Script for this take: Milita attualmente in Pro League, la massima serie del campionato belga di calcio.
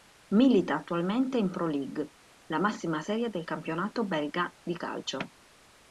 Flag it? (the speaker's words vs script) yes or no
no